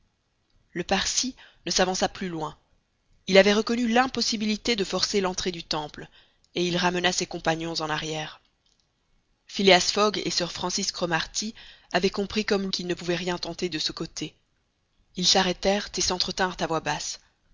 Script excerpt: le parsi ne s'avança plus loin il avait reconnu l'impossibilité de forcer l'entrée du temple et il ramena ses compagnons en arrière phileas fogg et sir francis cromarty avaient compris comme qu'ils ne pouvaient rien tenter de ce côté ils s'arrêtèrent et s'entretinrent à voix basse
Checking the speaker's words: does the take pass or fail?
pass